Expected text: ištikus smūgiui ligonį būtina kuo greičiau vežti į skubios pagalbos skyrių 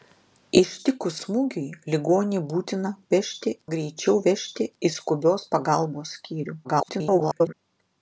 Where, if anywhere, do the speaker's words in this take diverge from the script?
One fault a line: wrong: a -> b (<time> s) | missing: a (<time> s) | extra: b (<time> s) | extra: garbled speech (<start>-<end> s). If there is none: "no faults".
wrong: kuo -> vežti (3.1 s)
extra: garbled speech (6.6-7.5 s)